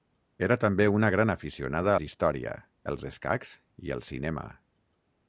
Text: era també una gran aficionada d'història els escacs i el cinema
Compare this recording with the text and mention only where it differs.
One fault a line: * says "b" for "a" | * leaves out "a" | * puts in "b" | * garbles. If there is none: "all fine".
all fine